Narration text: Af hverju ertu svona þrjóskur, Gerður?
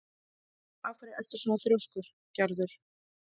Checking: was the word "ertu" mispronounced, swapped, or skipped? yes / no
no